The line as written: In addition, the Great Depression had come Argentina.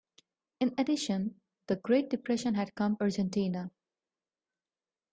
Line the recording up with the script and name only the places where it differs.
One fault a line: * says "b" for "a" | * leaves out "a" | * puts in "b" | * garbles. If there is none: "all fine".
all fine